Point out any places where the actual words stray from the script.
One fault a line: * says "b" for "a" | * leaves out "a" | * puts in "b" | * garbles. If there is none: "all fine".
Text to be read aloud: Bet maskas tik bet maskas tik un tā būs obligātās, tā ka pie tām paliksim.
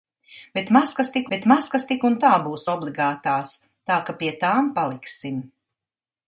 all fine